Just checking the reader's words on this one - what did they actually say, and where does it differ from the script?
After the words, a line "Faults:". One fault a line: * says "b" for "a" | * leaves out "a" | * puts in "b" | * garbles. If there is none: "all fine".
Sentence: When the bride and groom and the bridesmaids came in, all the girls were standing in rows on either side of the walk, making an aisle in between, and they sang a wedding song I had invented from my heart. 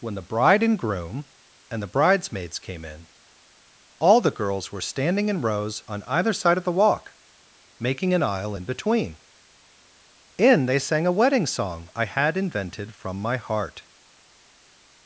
When the bride and groom and the bridesmaids came in, all the girls were standing in rows on either side of the walk, making an aisle in between, in they sang a wedding song I had invented from my heart.
Faults:
* says "in" for "and"